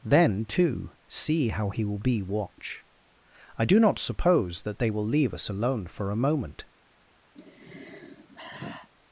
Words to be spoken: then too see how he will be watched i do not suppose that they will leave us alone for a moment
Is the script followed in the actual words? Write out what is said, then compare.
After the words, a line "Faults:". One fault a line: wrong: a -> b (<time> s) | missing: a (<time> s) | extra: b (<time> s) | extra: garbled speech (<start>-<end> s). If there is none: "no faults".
then too see how he will be watch i do not suppose that they will leave us alone for a moment
Faults:
wrong: watched -> watch (2.2 s)